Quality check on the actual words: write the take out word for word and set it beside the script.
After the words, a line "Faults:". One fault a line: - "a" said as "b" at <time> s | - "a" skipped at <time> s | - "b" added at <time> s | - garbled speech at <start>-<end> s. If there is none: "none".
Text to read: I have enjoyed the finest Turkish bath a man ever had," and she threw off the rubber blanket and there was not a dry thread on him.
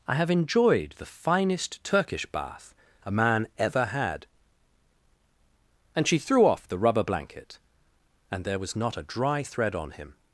I have enjoyed the finest Turkish bath a man ever had," and she threw off the rubber blanket and there was not a dry thread on him.
Faults:
none